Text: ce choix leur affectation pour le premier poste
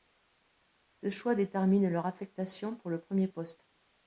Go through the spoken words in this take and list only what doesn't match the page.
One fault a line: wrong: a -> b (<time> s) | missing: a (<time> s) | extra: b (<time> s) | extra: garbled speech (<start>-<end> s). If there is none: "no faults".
extra: détermine (1.4 s)